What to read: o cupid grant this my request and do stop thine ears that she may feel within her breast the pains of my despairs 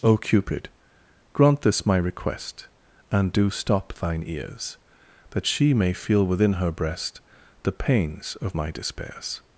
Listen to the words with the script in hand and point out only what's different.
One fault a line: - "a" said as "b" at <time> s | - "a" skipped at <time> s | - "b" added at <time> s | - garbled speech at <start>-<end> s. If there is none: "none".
none